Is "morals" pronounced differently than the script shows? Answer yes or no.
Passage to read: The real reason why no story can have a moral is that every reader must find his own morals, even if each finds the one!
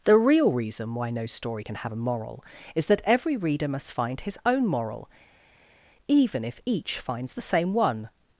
yes